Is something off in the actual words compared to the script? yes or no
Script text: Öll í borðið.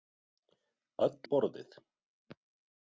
no